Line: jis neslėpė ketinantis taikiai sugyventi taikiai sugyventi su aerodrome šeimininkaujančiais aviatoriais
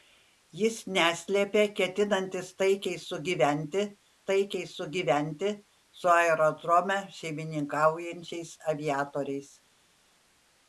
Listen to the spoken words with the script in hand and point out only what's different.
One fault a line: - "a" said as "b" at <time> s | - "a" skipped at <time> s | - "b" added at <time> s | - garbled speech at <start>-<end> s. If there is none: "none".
none